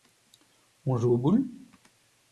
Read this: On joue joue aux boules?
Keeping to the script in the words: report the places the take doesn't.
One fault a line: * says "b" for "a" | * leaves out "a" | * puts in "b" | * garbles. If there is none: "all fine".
* leaves out "joue"